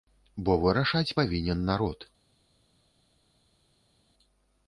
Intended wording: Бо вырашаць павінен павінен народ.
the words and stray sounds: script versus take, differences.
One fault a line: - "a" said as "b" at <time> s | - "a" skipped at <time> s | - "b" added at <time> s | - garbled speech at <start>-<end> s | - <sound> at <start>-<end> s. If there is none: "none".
- "павінен" skipped at 1.7 s